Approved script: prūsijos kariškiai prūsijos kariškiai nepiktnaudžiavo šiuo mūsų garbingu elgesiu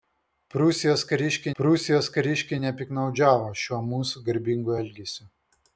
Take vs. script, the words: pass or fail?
pass